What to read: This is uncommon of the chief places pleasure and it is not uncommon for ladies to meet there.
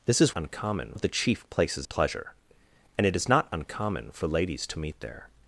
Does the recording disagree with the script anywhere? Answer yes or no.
no